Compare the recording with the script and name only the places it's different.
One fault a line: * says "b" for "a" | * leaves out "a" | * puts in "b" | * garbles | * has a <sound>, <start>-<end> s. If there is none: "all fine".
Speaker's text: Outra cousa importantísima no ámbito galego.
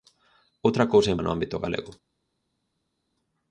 * leaves out "importantísima"